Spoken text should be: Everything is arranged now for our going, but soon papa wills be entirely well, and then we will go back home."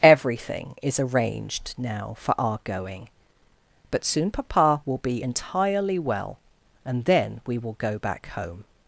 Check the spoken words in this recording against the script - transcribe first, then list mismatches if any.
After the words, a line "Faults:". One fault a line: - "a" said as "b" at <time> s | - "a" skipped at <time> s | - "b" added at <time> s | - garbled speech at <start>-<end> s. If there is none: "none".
Everything is arranged now for our going, but soon papa will be entirely well, and then we will go back home."
Faults:
- "wills" said as "will" at 4.8 s